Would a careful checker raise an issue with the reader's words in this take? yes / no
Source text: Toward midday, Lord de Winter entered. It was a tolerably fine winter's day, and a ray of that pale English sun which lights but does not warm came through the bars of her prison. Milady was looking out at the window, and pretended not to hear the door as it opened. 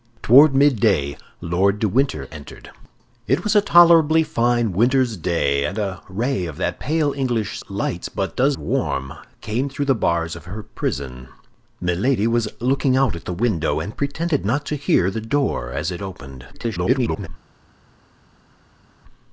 yes